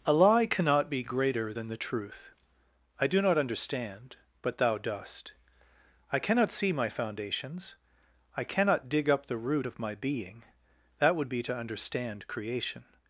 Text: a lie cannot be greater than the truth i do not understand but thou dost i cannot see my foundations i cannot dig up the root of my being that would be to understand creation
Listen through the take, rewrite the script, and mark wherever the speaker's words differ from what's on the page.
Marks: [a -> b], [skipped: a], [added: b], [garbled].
a lie cannot be greater than the truth i do not understand but thou dost i cannot see my foundations i cannot dig up the root of my being that would be to understand creation